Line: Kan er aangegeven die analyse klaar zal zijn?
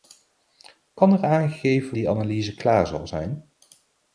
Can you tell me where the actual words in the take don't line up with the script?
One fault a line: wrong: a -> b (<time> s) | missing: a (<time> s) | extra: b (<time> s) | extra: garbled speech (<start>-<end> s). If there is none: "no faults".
no faults